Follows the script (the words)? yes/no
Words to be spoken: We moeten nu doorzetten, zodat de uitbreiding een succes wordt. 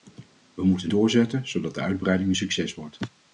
no